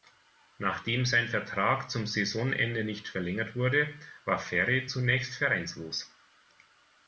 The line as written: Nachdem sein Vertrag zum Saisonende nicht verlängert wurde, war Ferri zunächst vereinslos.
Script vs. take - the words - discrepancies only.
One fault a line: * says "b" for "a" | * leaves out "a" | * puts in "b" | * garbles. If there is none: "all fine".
all fine